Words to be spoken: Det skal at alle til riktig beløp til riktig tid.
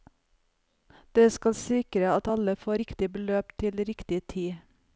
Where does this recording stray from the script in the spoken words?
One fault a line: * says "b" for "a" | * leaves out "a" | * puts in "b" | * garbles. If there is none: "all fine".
* puts in "sikre"
* says "får" for "til"